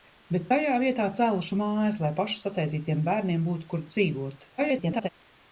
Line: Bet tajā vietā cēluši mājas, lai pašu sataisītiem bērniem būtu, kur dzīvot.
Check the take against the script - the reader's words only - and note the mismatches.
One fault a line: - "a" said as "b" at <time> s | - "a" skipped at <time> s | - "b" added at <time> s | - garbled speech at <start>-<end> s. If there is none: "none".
- garbled speech at 4.6-5.1 s